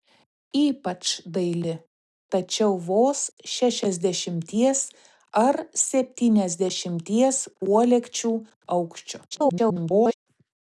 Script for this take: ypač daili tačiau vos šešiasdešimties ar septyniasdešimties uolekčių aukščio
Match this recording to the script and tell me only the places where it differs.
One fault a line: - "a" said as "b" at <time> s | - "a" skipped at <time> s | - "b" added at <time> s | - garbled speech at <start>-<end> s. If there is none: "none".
- garbled speech at 9.3-10.1 s